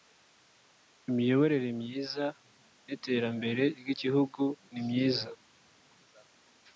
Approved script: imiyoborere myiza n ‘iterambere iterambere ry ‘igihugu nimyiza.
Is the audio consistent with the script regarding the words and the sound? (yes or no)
no